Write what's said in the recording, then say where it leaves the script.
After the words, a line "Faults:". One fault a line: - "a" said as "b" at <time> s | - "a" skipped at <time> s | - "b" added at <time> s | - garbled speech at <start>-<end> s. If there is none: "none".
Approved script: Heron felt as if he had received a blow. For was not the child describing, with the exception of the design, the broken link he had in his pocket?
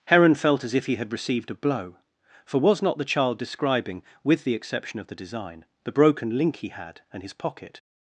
Heron felt as if he had received a blow. For was not the child describing, with the exception of the design, the broken link he had and his pocket?
Faults:
- "in" said as "and" at 7.1 s